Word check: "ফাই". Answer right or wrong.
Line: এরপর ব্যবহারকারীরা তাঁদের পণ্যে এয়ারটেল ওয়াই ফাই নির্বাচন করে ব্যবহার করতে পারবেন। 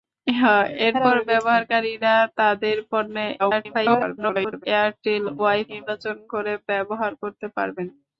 wrong